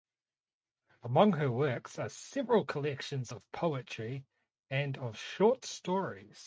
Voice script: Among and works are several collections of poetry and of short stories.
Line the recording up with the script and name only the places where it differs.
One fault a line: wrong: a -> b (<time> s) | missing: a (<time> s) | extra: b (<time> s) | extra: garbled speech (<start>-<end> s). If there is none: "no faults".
wrong: and -> her (1.3 s)